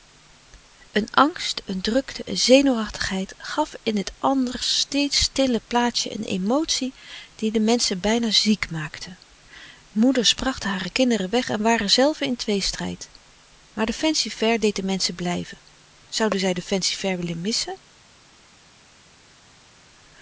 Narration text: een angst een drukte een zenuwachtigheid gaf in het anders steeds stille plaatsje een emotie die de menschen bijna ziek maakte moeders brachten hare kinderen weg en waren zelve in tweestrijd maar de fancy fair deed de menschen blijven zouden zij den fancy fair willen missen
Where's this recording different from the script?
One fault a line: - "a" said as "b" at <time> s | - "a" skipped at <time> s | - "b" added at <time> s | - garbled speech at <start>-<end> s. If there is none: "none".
none